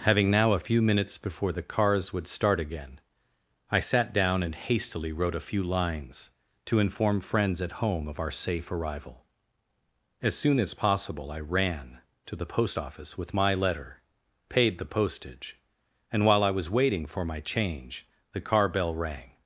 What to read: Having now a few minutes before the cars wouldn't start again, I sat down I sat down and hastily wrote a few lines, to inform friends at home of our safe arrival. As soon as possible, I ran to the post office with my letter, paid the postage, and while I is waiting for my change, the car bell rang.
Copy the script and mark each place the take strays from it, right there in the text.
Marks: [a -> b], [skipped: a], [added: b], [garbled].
Having now a few minutes before the cars [wouldn't -> would] start again, I sat down [skipped: I sat down] and hastily wrote a few lines, to inform friends at home of our safe arrival. As soon as possible, I ran to the post office with my letter, paid the postage, and while I [is -> was] waiting for my change, the car bell rang.